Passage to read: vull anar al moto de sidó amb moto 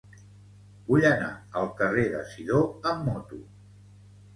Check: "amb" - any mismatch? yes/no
no